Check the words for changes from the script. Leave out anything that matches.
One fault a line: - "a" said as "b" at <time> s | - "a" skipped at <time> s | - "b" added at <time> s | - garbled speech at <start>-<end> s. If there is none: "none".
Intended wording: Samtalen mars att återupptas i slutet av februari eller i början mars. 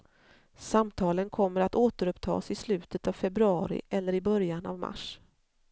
- "mars" said as "kommer" at 1.3 s
- "av" added at 4.7 s